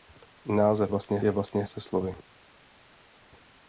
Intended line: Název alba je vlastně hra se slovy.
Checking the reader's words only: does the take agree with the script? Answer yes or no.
no